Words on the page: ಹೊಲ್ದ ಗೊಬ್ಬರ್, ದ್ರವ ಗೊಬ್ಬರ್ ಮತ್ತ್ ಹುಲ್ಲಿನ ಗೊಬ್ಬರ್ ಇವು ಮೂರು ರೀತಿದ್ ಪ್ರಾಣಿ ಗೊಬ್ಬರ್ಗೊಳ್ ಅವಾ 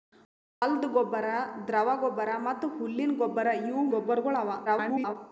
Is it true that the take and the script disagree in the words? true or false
true